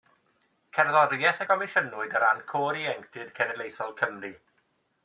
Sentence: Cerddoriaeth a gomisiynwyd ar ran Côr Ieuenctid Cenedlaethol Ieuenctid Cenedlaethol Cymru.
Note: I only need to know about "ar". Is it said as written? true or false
true